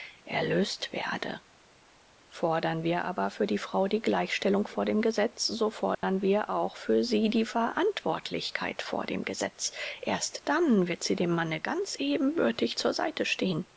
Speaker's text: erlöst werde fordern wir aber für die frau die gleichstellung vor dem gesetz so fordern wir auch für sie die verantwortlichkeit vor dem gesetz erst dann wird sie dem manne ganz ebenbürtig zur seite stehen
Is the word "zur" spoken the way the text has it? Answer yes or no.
yes